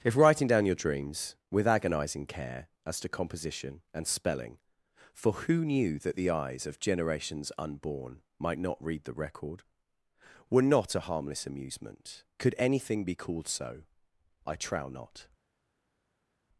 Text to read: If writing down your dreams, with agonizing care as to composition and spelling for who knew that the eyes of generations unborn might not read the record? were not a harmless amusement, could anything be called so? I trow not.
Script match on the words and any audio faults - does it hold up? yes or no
yes